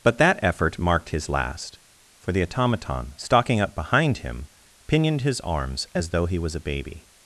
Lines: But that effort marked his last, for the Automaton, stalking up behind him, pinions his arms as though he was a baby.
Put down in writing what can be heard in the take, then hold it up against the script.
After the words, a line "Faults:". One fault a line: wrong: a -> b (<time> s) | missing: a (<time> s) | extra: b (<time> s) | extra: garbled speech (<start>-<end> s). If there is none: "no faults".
But that effort marked his last, for the Automaton, stalking up behind him, pinioned his arms as though he was a baby.
Faults:
wrong: pinions -> pinioned (4.9 s)